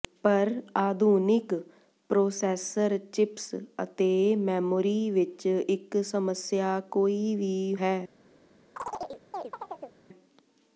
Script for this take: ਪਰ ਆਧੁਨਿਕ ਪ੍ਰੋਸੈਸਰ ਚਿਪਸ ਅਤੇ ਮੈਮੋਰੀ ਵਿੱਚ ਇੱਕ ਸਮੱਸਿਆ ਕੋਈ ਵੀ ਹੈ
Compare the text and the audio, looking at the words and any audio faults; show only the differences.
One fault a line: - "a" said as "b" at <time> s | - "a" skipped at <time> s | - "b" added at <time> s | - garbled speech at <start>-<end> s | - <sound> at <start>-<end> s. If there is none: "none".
- chirp at 8.8-10.0 s